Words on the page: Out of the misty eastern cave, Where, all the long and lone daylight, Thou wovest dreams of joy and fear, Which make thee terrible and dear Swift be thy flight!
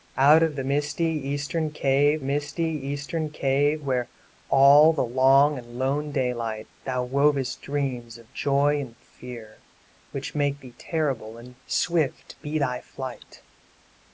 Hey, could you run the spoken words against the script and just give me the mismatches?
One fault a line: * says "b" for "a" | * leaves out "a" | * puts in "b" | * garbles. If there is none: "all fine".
* puts in "misty eastern cave"
* leaves out "dear"